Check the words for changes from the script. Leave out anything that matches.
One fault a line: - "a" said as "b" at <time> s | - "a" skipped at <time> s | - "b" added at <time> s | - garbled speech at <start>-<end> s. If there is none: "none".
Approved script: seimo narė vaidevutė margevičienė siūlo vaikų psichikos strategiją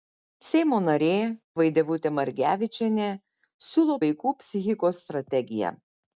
none